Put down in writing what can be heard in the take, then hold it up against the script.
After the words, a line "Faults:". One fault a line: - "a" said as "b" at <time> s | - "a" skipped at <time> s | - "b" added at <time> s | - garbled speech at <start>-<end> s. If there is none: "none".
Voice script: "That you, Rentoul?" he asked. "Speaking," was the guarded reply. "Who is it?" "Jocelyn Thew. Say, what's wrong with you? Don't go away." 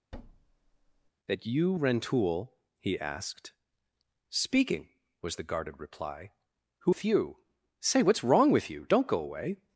"That you, Rentoul?" he asked. "Speaking," was the guarded reply. "Who Thew. Say, what's wrong with you? Don't go away."
Faults:
- "is it Jocelyn" skipped at 7.0 s